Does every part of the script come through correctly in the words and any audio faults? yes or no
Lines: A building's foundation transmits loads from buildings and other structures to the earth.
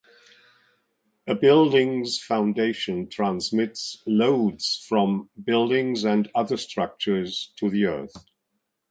yes